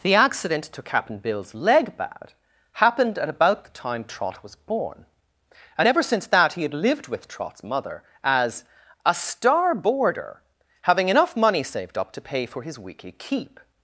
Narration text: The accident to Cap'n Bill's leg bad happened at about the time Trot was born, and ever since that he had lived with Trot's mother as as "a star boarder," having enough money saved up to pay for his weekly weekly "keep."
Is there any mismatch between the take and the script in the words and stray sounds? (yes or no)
yes